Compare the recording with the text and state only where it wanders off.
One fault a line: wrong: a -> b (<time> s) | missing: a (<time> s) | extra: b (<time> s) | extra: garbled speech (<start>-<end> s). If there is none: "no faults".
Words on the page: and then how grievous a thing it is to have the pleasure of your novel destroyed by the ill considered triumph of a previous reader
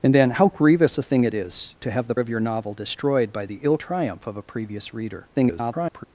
missing: pleasure (2.1 s)
missing: considered (3.8 s)
extra: garbled speech (5.3-6.0 s)